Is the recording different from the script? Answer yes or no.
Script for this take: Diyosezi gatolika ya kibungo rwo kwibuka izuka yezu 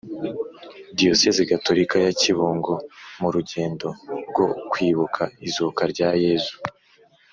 yes